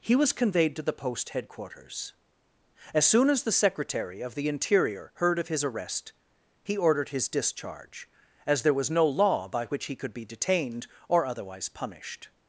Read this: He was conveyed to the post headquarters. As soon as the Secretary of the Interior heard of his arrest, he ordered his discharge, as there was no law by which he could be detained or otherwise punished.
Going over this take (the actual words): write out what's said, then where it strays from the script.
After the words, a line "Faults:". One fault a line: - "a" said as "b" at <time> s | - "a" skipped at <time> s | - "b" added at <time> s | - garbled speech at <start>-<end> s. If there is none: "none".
He was conveyed to the post headquarters. As soon as the Secretary of the Interior heard of his arrest, he ordered his discharge, as there was no law by which he could be detained or otherwise punished.
Faults:
none